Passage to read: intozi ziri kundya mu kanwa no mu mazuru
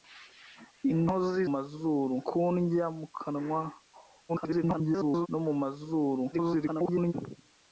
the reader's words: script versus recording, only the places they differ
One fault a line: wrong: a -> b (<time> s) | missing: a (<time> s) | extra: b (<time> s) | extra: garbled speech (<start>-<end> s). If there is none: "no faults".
wrong: ziri -> mazuru (1.5 s)
extra: garbled speech (4.3-5.3 s)
extra: garbled speech (6.3-7.1 s)